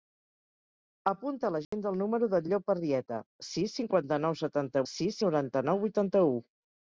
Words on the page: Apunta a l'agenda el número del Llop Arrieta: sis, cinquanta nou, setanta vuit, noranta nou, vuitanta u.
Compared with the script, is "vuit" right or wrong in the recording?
wrong